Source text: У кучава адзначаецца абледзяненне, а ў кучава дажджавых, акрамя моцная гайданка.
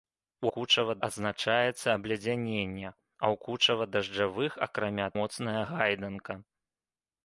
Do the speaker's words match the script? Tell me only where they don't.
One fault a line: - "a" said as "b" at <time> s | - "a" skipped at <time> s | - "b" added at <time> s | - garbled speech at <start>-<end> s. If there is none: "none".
none